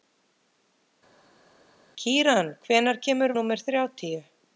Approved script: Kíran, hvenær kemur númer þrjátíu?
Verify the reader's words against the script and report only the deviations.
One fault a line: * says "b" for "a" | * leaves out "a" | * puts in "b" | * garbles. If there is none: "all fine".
all fine